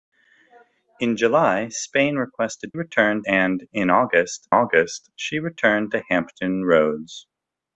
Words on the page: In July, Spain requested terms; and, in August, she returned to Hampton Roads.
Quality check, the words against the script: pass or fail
fail